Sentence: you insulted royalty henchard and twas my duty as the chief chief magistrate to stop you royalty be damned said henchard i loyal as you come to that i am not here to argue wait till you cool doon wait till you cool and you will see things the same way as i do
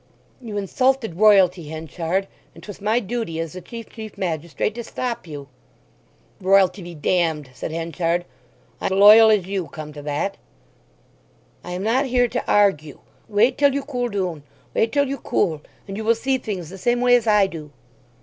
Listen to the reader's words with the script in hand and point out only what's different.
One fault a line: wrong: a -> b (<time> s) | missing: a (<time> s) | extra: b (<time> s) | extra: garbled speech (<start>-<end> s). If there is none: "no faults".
no faults